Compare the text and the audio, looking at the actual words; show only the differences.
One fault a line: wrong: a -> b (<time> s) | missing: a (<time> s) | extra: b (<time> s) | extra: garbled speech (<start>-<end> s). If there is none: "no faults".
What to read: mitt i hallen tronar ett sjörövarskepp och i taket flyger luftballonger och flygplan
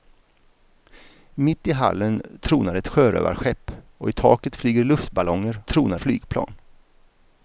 wrong: och -> tronar (5.7 s)